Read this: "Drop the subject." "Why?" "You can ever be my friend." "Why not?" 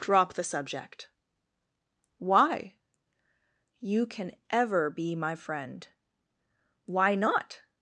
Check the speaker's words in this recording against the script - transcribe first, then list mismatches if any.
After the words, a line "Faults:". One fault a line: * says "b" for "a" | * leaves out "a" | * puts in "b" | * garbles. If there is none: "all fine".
"Drop the subject." "Why?" "You can ever be my friend." "Why not?"
Faults:
all fine